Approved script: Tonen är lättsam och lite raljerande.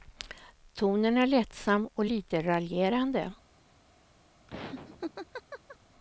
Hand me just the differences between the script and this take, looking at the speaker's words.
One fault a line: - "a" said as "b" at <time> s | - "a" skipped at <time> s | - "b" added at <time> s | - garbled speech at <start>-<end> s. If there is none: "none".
none